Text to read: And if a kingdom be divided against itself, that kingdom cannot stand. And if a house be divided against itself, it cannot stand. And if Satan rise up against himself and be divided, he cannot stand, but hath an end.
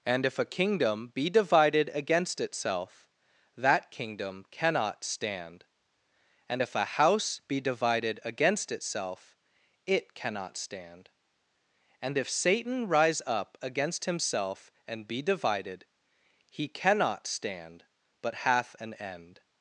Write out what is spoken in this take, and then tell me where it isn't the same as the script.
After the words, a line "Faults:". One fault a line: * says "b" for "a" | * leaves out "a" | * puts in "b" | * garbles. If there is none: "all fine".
And if a kingdom be divided against itself, that kingdom cannot stand. And if a house be divided against itself, it cannot stand. And if Satan rise up against himself and be divided, he cannot stand, but hath an end.
Faults:
all fine